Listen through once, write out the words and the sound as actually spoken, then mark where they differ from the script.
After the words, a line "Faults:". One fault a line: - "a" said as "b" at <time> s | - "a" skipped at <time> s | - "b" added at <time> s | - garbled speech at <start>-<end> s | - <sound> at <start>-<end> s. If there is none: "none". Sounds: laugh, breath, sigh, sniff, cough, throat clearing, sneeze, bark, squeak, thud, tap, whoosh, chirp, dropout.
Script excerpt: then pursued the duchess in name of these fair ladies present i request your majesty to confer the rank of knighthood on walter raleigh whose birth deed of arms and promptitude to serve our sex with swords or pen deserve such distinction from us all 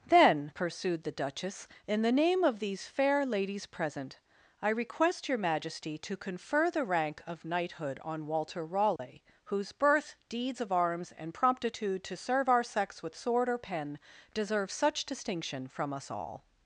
then pursued the duchess in the name of these fair ladies present i request your majesty to confer the rank of knighthood on walter raleigh whose birth deeds of arms and promptitude to serve our sex with sword or pen deserve such distinction from us all
Faults:
- "the" added at 2.0 s
- dropout at 9.0-9.0 s
- "deed" said as "deeds" at 10.3 s
- "swords" said as "sword" at 13.2 s